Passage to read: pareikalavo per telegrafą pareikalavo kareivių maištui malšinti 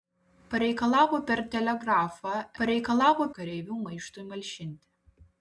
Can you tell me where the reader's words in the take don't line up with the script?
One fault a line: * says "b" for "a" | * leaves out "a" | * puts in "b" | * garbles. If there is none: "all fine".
all fine